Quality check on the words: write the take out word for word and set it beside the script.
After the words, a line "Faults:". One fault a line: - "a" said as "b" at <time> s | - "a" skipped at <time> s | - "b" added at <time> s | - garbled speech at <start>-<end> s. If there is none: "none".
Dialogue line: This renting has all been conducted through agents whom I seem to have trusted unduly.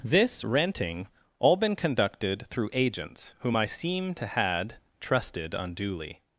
This renting all been conducted through agents whom I seem to had trusted unduly.
Faults:
- "has" skipped at 1.1 s
- "have" said as "had" at 4.3 s